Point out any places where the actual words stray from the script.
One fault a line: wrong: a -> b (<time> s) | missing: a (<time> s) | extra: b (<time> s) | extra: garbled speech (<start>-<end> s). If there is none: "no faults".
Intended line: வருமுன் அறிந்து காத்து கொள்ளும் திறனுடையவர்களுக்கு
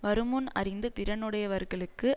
missing: காத்து கொள்ளும் (0.9 s)